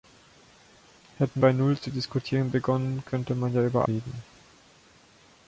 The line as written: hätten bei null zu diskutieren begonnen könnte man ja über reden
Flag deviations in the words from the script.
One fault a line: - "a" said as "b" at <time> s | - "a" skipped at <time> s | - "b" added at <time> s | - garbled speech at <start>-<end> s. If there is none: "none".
none